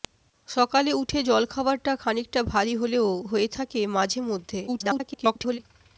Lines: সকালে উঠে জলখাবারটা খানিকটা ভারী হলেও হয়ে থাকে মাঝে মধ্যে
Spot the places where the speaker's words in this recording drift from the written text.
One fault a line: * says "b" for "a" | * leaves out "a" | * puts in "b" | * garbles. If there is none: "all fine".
* garbles